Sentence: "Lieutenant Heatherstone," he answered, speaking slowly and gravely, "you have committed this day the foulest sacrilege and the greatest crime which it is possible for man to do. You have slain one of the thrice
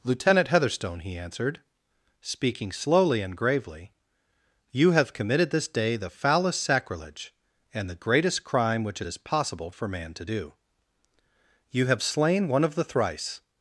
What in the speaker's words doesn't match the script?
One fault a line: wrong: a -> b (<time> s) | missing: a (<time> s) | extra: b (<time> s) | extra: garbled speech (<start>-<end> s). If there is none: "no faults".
no faults